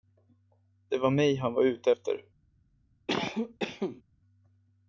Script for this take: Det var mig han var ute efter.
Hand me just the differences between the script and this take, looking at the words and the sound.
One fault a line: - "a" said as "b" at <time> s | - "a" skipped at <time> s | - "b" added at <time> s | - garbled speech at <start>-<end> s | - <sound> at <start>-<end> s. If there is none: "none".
- cough at 3.1-4.0 s